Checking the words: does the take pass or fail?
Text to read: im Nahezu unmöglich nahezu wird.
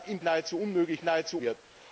pass